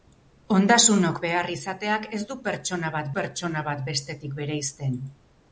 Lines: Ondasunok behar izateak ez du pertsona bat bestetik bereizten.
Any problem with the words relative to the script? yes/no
yes